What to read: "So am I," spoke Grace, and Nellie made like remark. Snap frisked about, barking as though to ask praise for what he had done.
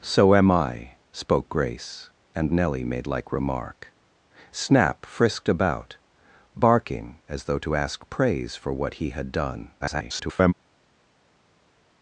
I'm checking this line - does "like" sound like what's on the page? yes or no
yes